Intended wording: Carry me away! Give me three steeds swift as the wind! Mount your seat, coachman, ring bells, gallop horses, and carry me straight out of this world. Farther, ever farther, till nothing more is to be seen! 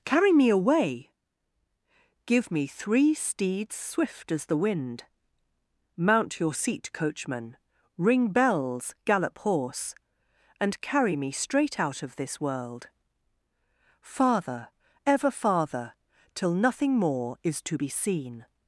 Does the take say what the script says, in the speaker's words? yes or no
no